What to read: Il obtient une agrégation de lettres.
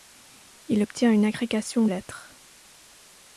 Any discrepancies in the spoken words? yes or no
yes